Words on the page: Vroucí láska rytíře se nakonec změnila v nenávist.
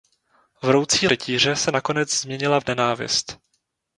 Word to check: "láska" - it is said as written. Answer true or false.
false